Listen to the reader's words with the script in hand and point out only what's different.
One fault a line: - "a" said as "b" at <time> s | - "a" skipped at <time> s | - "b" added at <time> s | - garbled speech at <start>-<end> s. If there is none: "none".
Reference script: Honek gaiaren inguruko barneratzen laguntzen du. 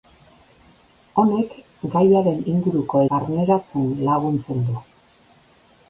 none